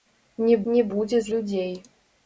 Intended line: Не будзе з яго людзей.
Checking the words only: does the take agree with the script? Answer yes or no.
no